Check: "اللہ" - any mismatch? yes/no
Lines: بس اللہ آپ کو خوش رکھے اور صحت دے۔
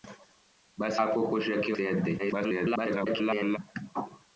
yes